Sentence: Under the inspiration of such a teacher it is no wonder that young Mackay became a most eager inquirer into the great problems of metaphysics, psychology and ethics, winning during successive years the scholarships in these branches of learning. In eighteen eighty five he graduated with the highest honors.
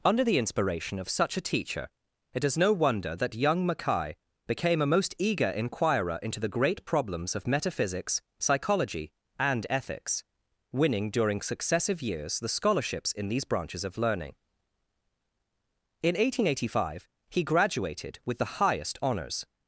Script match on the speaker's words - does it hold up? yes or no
yes